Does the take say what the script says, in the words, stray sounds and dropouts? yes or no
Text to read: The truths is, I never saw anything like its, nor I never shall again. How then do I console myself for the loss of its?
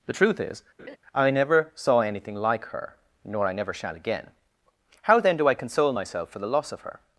no